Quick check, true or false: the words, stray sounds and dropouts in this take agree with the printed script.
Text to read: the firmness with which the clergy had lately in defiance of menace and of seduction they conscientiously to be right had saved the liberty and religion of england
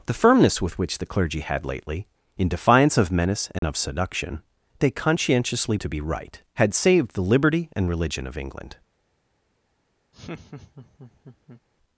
false